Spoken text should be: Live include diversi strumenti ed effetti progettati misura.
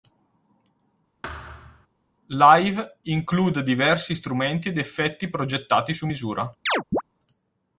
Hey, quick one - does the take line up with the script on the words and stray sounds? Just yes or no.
no